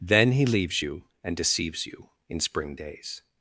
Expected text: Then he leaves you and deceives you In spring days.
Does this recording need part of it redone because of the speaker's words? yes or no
no